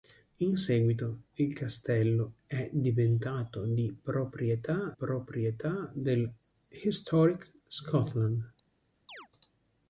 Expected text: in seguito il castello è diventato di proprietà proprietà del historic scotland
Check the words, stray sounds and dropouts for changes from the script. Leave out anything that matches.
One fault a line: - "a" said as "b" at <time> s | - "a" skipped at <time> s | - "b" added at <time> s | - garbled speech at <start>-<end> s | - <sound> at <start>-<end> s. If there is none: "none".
- chirp at 9.1-9.3 s